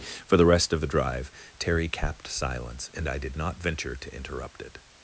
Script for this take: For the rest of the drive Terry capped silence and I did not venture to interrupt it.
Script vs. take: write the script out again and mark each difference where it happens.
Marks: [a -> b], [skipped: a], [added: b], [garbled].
For the rest of the drive Terry capped silence and I did not venture to interrupt it.